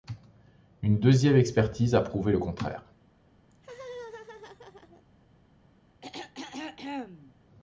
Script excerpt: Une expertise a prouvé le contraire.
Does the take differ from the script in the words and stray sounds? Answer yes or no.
yes